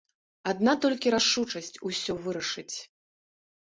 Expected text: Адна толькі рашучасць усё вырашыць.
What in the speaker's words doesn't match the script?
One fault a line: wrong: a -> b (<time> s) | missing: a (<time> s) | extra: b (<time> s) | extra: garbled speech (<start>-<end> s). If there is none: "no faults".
no faults